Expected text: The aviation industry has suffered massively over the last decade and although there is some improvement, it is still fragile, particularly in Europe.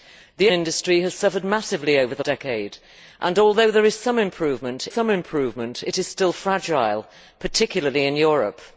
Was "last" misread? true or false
true